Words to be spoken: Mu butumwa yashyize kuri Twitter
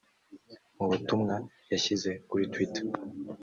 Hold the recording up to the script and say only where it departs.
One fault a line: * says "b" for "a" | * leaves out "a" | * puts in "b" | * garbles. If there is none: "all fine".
all fine